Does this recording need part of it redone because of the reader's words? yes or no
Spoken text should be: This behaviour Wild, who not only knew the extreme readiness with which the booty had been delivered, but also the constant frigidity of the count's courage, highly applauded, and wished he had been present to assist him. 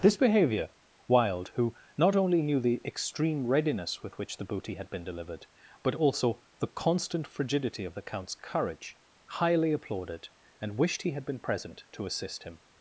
no